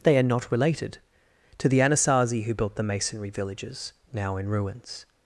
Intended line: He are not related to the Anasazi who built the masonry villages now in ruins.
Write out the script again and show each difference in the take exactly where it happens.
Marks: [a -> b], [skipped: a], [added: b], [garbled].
[He -> They] are not related to the Anasazi who built the masonry villages now in ruins.